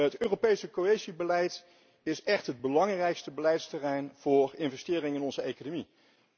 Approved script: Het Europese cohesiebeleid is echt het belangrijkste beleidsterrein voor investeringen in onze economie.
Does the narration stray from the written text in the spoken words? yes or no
no